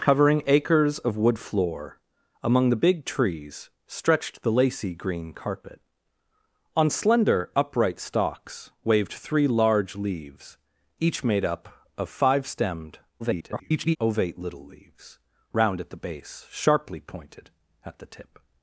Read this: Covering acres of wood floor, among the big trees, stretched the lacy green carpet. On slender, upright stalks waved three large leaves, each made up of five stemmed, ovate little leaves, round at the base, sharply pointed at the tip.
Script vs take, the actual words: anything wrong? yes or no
yes